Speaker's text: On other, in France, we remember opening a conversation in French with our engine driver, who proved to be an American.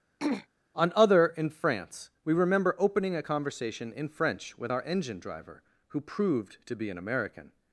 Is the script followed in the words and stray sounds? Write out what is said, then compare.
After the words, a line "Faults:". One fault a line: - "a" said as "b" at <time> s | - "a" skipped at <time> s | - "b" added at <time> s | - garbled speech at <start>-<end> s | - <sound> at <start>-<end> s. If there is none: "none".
On other, in France, we remember opening a conversation in French with our engine driver, who proved to be an American.
Faults:
- throat clearing at 0.2-0.5 s